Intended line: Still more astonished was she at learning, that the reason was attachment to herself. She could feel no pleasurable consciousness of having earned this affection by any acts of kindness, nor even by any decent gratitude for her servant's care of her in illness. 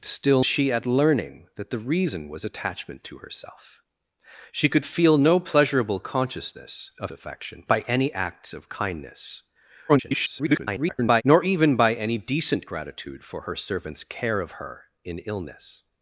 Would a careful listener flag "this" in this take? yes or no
yes